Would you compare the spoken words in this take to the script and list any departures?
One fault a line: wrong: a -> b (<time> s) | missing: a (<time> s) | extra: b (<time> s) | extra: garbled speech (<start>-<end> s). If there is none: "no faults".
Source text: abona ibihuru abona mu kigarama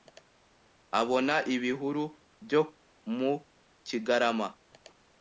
wrong: abona -> byo (2.5 s)